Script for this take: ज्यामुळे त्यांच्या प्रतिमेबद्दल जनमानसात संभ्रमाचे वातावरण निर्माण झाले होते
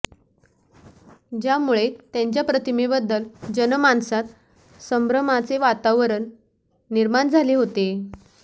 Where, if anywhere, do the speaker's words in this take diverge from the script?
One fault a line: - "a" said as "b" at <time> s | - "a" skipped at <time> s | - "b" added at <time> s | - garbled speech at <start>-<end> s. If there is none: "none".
none